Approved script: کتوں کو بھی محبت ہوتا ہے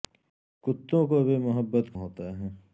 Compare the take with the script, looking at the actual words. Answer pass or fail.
pass